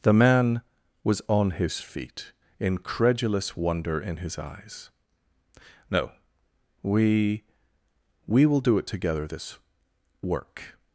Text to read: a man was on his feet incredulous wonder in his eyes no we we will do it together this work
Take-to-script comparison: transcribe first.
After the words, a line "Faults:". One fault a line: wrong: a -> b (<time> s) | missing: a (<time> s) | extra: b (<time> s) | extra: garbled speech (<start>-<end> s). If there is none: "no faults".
the man was on his feet incredulous wonder in his eyes no we we will do it together this work
Faults:
wrong: a -> the (0.0 s)